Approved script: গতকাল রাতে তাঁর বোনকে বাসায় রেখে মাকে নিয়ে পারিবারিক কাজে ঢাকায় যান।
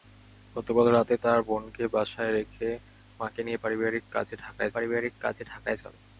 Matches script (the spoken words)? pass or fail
fail